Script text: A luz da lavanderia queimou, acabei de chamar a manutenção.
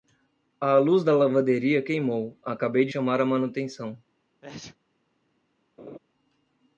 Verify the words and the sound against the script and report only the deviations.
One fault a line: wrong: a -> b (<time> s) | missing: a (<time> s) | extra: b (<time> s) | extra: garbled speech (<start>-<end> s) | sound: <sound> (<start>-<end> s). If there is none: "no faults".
sound: sneeze (4.4-4.8 s)
sound: laugh (5.8-6.0 s)